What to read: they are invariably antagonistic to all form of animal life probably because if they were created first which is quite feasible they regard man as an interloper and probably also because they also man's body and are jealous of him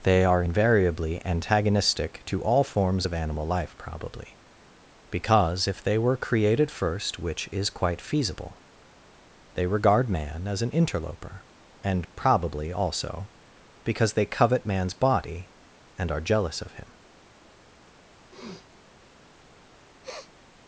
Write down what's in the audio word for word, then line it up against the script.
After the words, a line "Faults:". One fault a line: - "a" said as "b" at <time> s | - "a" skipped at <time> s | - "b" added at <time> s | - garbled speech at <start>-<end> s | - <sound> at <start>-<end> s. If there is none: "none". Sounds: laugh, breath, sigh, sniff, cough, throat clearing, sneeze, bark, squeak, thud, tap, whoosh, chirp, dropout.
they are invariably antagonistic to all forms of animal life probably because if they were created first which is quite feasible they regard man as an interloper and probably also because they covet man's body and are jealous of him
Faults:
- "form" said as "forms" at 2.6 s
- "also" said as "covet" at 14.3 s
- sniff at 18.3-18.7 s
- sniff at 20.0-20.3 s